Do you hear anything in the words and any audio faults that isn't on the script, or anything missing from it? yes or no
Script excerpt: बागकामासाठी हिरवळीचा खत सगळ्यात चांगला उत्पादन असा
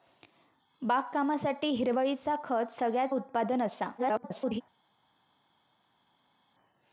yes